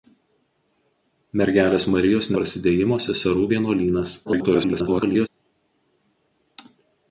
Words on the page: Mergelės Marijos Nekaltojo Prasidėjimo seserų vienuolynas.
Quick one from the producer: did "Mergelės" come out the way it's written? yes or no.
yes